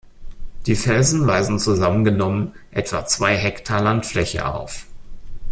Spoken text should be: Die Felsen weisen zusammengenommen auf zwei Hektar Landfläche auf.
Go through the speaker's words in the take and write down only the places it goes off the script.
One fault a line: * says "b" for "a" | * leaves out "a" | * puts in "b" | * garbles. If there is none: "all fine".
* says "etwa" for "auf"